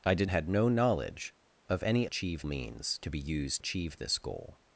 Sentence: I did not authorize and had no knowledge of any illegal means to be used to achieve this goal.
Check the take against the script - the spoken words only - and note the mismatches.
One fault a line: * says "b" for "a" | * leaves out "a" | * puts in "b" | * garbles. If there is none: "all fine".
* leaves out "not authorize and"
* says "achieve" for "illegal"
* leaves out "to"